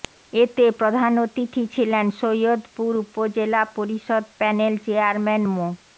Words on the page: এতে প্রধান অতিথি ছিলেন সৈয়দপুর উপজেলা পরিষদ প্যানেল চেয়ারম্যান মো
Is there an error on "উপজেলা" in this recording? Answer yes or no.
no